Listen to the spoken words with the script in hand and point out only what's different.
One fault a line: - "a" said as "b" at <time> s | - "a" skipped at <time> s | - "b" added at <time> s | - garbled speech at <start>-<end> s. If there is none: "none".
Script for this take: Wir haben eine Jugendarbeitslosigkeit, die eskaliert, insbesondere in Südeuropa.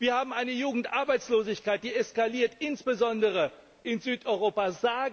none